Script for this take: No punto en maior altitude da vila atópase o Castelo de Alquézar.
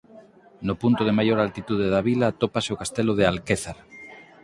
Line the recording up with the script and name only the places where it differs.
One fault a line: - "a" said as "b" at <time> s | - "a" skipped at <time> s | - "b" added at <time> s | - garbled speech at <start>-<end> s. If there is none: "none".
- "en" said as "de" at 1.1 s